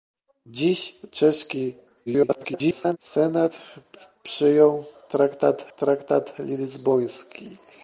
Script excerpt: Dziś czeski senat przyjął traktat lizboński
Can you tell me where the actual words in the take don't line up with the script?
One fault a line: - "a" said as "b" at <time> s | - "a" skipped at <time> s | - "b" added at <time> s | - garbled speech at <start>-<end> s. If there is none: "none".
- garbled speech at 2.1-3.0 s
- "traktat" added at 5.8 s